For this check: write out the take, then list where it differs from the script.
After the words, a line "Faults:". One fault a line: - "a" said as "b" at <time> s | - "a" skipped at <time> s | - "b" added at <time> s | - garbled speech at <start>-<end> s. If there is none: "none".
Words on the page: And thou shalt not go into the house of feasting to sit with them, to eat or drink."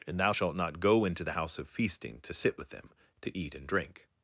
And thou shalt not go into the house of feasting to sit with them, to eat and drink."
Faults:
- "or" said as "and" at 3.5 s